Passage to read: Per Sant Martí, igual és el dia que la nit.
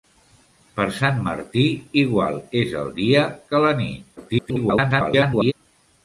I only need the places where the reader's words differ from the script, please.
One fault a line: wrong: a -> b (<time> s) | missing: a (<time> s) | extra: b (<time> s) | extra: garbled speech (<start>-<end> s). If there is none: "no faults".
extra: garbled speech (4.2-5.5 s)